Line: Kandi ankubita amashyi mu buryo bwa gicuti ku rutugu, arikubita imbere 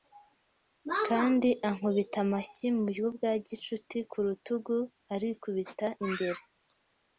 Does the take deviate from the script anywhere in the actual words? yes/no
no